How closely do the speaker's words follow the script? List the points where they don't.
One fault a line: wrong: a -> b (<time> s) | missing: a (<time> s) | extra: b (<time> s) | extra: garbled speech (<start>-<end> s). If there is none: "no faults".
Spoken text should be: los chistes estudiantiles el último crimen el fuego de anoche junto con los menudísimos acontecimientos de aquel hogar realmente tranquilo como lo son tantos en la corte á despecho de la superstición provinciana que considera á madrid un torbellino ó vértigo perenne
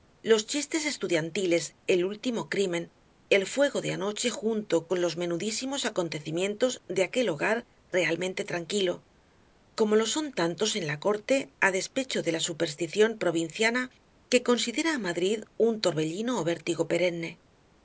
no faults